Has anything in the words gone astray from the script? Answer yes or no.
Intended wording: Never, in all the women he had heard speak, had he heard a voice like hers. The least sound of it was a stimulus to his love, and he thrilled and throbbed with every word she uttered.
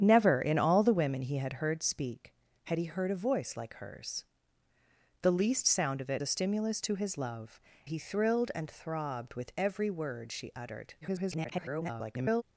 yes